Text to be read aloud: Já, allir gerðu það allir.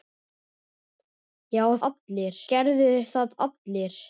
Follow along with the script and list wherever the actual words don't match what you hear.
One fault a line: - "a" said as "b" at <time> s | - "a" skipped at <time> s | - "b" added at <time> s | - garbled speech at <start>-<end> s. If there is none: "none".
none